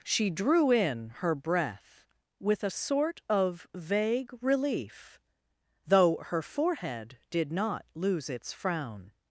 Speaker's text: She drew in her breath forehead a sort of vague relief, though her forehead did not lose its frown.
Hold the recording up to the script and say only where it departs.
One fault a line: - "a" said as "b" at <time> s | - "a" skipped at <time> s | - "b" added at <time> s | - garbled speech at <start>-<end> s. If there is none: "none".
- "forehead" said as "with" at 2.4 s